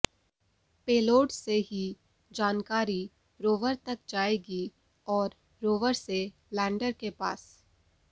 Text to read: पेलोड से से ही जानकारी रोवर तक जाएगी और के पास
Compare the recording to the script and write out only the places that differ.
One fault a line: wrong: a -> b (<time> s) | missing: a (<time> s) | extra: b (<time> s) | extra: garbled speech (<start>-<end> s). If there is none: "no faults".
missing: से (1.6 s)
extra: रोवर से लैंडर (5.6 s)